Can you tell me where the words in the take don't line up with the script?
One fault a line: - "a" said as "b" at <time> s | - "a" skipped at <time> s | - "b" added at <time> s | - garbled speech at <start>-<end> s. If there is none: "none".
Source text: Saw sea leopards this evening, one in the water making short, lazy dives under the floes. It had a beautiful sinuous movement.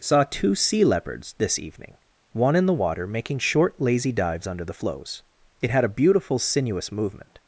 - "two" added at 0.2 s